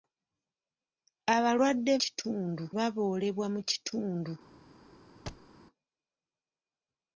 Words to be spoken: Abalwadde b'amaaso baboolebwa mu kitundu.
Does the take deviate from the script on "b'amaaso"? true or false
true